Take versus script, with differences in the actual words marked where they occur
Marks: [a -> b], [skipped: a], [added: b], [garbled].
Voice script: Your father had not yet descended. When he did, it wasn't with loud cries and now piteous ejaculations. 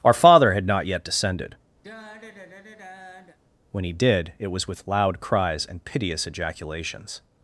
[Your -> Our] father had not yet descended. When he did, it [wasn't -> was] with loud cries and [skipped: now] piteous ejaculations.